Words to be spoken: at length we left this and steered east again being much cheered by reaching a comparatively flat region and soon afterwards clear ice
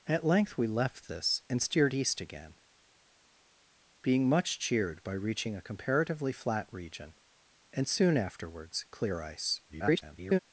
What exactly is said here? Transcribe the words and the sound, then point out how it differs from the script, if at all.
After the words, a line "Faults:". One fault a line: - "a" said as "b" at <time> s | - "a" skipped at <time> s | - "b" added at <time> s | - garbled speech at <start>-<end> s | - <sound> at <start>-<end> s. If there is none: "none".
at length we left this and steered east again being much cheered by reaching a comparatively flat region and soon afterwards clear ice [garbled]
Faults:
- garbled speech at 9.7-10.4 s